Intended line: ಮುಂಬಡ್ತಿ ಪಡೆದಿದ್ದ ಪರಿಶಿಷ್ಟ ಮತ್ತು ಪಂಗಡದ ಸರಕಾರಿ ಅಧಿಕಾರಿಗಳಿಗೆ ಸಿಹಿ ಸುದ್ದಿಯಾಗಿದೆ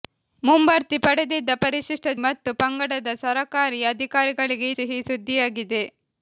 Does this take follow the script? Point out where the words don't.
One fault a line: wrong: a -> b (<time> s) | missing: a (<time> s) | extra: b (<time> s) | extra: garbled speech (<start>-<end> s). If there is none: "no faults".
no faults